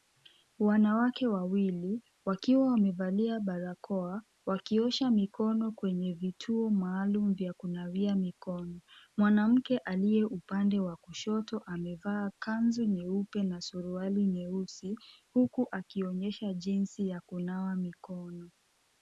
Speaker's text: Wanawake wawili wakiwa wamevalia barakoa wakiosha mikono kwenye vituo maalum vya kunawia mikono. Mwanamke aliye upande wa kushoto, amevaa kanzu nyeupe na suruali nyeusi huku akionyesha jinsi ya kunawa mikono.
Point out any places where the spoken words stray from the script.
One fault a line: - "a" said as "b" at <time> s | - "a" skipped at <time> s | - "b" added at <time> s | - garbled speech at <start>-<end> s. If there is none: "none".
none